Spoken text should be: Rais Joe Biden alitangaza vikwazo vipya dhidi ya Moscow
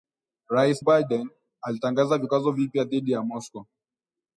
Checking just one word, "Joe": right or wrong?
wrong